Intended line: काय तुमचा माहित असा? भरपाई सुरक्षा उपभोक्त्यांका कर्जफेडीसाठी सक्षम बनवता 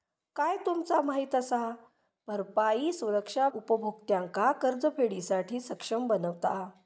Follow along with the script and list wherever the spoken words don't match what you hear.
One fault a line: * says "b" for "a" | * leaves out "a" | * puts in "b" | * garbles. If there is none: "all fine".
all fine